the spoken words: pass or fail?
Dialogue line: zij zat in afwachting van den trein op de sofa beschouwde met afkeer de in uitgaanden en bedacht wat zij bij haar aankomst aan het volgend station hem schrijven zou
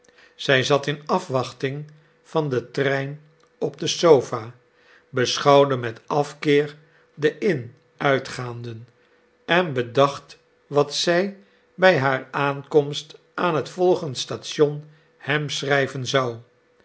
pass